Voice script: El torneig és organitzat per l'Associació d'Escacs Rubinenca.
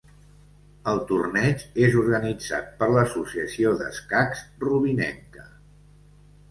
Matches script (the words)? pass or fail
pass